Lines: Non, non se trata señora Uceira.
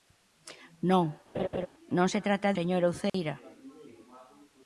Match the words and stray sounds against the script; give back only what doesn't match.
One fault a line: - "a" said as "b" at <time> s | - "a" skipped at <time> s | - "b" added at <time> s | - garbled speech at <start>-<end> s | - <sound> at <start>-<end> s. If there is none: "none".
- laugh at 1.3-1.7 s
- dropout at 3.1-3.1 s